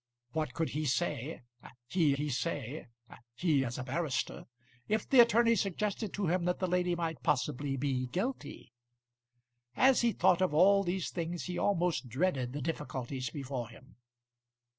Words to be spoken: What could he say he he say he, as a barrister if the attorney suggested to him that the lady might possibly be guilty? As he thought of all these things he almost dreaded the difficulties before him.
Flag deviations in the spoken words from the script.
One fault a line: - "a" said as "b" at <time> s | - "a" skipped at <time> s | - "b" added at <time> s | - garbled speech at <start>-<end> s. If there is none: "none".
none